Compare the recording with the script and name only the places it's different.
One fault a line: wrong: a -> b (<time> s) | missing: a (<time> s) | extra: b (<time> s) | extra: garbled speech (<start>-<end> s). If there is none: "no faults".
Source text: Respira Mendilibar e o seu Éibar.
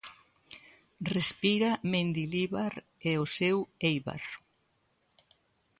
no faults